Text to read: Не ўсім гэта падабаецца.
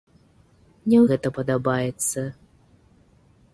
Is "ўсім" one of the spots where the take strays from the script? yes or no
yes